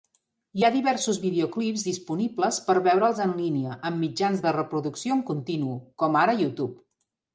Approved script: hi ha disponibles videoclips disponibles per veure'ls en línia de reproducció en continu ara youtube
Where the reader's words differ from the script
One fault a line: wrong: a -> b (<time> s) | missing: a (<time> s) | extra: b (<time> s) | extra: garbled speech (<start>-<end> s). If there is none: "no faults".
wrong: disponibles -> diversos (0.7 s)
extra: amb mitjans (3.9 s)
extra: com (6.0 s)